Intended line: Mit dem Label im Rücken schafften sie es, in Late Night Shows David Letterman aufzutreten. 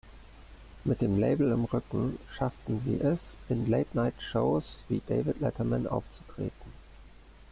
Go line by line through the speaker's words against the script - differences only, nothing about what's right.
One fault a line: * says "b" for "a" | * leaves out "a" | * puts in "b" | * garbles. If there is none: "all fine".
* puts in "wie"